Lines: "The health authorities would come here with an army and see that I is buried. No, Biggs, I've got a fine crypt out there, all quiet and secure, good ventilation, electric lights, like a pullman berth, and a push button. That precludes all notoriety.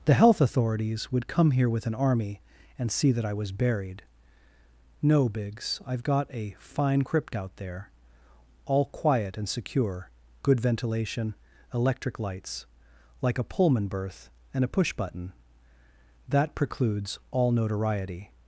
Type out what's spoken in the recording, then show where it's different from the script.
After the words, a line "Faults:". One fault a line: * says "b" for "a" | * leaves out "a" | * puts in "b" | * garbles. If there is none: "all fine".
"The health authorities would come here with an army and see that I was buried. No, Biggs, I've got a fine crypt out there, all quiet and secure, good ventilation, electric lights, like a pullman berth, and a push button. That precludes all notoriety.
Faults:
* says "was" for "is"